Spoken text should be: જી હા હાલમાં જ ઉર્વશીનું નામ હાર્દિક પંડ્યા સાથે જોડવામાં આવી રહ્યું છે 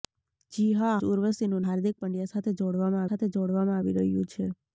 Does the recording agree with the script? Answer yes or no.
no